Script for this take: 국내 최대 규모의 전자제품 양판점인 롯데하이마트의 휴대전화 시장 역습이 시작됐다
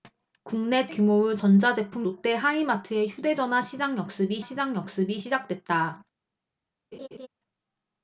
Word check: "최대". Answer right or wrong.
wrong